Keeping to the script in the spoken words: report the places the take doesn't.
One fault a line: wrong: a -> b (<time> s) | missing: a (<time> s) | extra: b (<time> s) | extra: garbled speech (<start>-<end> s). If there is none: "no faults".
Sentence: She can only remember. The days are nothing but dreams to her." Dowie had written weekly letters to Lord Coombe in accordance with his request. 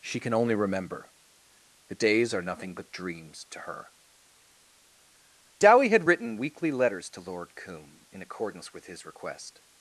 no faults